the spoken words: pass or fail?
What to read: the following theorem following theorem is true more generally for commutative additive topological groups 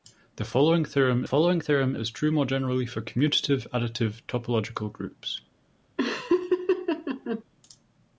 pass